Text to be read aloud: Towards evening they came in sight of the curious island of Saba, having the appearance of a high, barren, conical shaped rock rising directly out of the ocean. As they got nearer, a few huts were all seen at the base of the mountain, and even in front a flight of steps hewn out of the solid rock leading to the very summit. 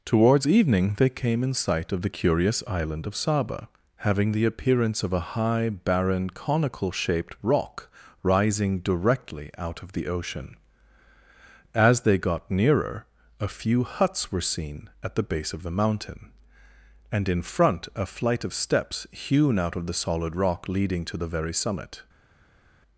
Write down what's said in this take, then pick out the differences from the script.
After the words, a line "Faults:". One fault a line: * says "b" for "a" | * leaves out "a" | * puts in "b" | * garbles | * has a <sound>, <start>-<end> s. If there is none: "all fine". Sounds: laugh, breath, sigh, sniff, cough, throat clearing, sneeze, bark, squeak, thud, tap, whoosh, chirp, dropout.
Towards evening they came in sight of the curious island of Saba, having the appearance of a high, barren, conical shaped rock rising directly out of the ocean. As they got nearer, a few huts were seen at the base of the mountain, and in front a flight of steps hewn out of the solid rock leading to the very summit.
Faults:
* leaves out "all"
* leaves out "even"